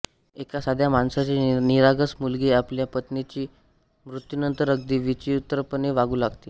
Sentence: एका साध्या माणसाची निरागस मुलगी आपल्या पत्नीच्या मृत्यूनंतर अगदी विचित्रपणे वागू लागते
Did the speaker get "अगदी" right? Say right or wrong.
right